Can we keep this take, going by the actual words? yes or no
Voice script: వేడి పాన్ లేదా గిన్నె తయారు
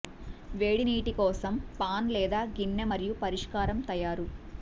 no